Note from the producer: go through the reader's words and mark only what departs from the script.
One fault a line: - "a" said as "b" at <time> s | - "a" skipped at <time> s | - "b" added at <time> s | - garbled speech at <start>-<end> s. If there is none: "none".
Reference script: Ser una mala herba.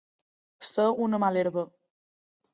none